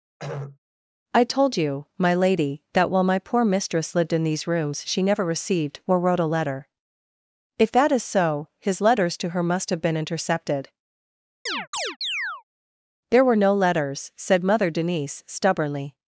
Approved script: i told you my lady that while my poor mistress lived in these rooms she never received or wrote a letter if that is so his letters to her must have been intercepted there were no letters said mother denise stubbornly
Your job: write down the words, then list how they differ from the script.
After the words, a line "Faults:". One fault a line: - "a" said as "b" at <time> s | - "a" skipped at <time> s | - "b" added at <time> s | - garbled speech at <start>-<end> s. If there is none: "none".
i told you my lady that while my poor mistress lived in these rooms she never received or wrote a letter if that is so his letters to her must have been intercepted there were no letters said mother denise stubbornly
Faults:
none